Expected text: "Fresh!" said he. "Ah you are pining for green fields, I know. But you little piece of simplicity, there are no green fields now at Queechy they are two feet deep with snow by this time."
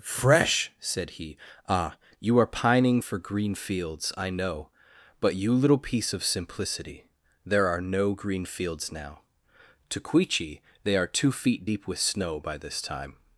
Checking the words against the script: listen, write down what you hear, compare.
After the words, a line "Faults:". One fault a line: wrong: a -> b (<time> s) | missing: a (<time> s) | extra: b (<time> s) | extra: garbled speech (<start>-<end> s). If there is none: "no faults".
"Fresh!" said he. "Ah you are pining for green fields, I know. But you little piece of simplicity, there are no green fields now to Queechy they are two feet deep with snow by this time."
Faults:
wrong: at -> to (9.9 s)